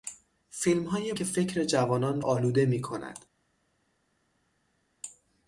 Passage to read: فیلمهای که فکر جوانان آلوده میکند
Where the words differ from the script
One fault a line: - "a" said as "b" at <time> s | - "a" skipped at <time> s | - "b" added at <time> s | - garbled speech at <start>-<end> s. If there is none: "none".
none